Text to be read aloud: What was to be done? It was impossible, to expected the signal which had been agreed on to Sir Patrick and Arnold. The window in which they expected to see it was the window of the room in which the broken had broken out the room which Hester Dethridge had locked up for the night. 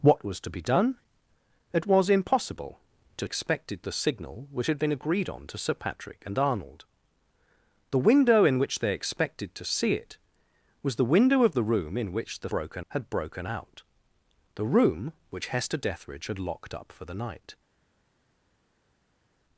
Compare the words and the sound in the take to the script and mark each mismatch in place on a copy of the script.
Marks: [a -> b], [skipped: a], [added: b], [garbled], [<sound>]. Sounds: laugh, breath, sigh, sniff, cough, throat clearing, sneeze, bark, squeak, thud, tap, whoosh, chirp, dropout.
What was to be done? It was impossible, to expected the signal which had been agreed on to Sir Patrick and Arnold. The window in which they expected to see it was the window of the room in which the broken had broken out the room which Hester Dethridge had locked up for the night.